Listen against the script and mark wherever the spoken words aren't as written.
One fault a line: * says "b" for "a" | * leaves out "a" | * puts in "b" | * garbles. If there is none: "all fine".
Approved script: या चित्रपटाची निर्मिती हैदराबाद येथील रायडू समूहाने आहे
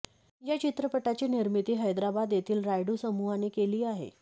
* puts in "केली"